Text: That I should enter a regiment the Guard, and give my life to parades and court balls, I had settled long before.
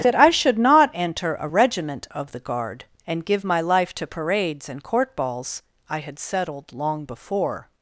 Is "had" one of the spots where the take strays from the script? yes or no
no